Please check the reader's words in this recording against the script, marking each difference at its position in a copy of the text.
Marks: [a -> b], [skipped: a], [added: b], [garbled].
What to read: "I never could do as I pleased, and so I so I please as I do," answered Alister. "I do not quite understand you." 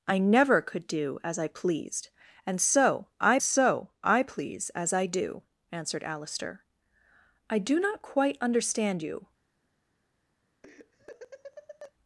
"I never could do as I pleased, and so I so I please as I do," answered Alister. "I do not quite understand you."